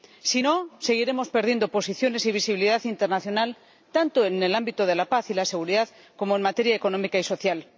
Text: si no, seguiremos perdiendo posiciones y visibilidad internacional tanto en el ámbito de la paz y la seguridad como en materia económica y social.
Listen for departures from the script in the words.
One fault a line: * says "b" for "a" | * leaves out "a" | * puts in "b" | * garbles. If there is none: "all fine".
all fine